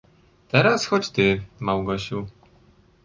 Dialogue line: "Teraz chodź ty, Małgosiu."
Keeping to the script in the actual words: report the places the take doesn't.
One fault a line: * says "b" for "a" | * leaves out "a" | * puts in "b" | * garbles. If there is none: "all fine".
all fine